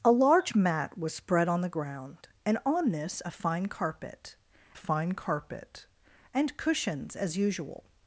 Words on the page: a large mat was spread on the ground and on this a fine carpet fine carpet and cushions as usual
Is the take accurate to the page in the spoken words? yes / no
yes